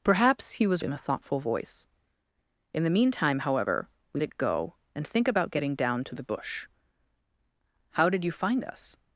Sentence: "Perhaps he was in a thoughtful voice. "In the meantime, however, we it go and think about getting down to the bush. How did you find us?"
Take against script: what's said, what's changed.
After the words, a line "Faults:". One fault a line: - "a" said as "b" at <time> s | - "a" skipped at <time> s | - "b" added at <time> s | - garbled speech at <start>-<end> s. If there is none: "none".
"Perhaps he was in a thoughtful voice. "In the meantime, however, we it go and think about getting down to the bush. How did you find us?"
Faults:
none